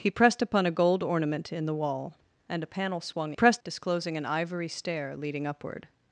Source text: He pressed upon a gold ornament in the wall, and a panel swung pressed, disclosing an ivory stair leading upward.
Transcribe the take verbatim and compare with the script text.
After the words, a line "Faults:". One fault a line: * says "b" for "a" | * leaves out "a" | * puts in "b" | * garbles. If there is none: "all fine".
He pressed upon a gold ornament in the wall, and a panel swung pressed, disclosing an ivory stair leading upward.
Faults:
all fine